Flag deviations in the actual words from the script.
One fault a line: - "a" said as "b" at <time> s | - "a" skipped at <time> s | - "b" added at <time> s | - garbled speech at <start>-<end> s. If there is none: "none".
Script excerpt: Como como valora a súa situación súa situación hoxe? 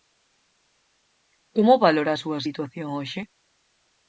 - "como" skipped at 1.8 s
- "súa situación" skipped at 2.9 s